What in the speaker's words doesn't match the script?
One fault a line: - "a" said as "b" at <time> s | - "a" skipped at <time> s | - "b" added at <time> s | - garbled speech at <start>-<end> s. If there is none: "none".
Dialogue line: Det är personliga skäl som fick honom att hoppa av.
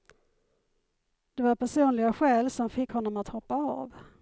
- "är" said as "var" at 1.4 s